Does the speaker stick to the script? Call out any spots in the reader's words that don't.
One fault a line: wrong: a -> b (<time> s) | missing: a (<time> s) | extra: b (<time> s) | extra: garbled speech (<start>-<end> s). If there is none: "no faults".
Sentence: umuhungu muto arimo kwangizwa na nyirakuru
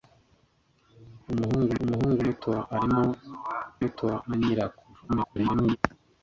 extra: umuhungu (1.8 s)
wrong: kwangizwa -> muto (3.8 s)
extra: garbled speech (5.1-5.8 s)